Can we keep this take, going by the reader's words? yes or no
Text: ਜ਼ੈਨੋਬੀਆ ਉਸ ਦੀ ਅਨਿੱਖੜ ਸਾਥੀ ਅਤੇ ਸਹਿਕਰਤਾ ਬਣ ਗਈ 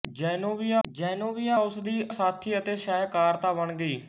no